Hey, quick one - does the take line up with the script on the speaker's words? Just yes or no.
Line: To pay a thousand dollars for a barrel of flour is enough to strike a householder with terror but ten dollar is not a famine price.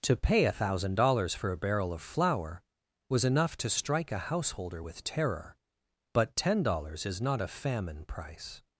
no